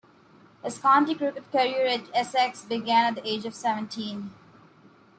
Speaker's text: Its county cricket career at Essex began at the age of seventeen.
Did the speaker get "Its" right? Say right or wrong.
wrong